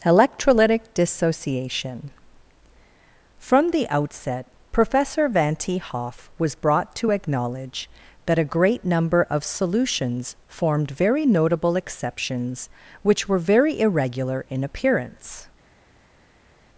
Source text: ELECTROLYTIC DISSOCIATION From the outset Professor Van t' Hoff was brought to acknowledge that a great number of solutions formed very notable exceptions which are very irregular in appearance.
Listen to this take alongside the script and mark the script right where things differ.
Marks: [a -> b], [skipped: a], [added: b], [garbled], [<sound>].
ELECTROLYTIC DISSOCIATION From the outset Professor Van t' Hoff was brought to acknowledge that a great number of solutions formed very notable exceptions which [are -> were] very irregular in appearance.